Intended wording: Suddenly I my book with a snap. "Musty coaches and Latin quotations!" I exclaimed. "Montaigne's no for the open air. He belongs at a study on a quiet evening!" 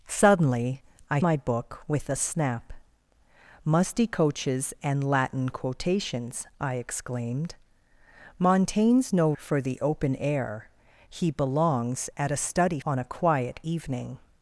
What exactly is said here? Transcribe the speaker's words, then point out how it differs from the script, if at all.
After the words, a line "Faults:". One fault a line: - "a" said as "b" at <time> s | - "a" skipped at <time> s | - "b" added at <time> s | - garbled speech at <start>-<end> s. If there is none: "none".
Suddenly I my book with a snap. "Musty coaches and Latin quotations!" I exclaimed. "Montaigne's no for the open air. He belongs at a study on a quiet evening!"
Faults:
none